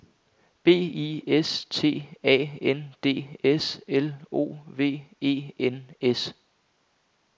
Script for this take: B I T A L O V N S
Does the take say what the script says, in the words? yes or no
no